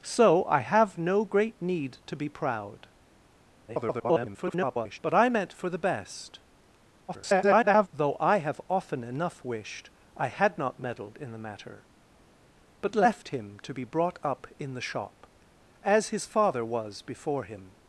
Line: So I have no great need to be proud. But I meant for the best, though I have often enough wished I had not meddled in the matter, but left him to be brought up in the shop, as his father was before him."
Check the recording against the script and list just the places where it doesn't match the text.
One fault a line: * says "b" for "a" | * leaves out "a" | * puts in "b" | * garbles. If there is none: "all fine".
* garbles
* garbles